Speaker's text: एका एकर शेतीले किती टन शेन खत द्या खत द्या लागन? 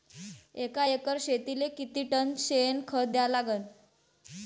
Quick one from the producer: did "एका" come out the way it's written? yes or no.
yes